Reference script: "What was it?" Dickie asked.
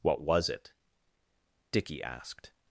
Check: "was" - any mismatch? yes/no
no